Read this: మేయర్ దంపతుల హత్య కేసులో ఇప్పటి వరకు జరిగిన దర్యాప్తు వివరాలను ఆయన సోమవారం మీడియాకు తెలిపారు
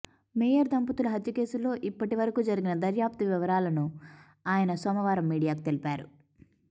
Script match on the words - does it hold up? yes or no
yes